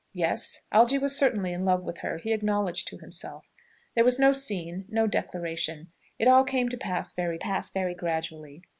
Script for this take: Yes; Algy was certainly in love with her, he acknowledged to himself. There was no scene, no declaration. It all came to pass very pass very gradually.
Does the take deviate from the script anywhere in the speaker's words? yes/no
no